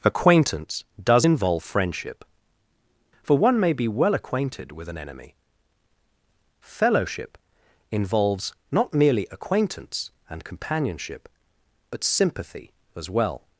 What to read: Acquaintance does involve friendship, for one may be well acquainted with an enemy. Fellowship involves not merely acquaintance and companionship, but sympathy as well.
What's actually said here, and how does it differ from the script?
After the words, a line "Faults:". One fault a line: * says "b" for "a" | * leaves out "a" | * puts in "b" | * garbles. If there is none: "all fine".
Acquaintance does involve friendship, for one may be well acquainted with an enemy. Fellowship involves not merely acquaintance and companionship, but sympathy as well.
Faults:
all fine